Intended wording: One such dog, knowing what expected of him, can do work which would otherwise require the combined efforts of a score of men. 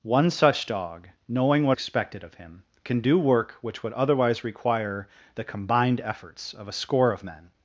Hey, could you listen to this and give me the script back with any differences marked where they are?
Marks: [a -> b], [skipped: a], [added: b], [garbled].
One such dog, knowing what expected of him, can do work which would otherwise require the combined efforts of a score of men.